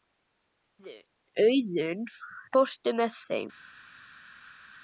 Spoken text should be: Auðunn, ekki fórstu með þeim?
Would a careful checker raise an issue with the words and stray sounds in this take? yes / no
yes